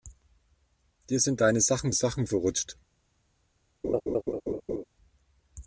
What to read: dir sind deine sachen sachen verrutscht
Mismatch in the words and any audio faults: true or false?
true